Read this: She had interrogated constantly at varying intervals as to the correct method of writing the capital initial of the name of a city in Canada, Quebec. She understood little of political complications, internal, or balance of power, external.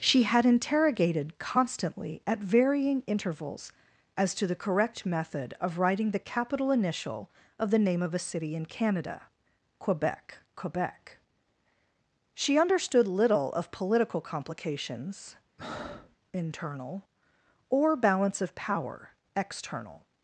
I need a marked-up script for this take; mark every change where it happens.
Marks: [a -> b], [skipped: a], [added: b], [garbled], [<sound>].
She had interrogated constantly at varying intervals as to the correct method of writing the capital initial of the name of a city in Canada, Quebec. [added: Quebec] She understood little of political complications, [breath] internal, or balance of power, external.